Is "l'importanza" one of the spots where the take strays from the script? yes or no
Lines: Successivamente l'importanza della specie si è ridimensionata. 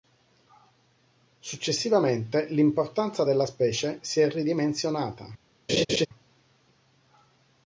no